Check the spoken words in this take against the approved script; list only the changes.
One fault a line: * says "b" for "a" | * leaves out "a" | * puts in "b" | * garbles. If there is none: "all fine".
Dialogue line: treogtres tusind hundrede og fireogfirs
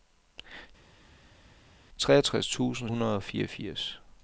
all fine